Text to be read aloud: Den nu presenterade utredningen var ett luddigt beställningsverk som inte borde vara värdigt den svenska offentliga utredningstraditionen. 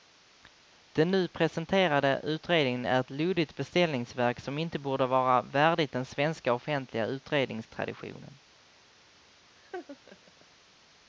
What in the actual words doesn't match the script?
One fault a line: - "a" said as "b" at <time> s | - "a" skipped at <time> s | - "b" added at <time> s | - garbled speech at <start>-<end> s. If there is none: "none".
- "var" said as "är" at 2.9 s